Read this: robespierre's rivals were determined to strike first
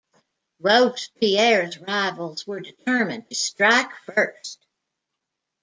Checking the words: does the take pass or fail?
pass